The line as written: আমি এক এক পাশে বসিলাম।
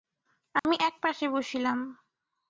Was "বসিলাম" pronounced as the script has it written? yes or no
yes